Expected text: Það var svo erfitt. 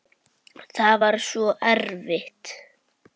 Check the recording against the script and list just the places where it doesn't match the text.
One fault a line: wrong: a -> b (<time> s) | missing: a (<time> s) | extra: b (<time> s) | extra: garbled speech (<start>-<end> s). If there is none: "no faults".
no faults